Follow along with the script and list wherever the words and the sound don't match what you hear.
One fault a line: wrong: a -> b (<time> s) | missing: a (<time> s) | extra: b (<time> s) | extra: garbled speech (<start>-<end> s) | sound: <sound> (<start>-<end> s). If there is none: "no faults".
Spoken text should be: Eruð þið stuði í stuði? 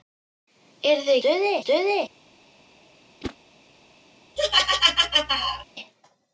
sound: whoosh (3.2-3.4 s)
sound: laugh (4.4-5.7 s)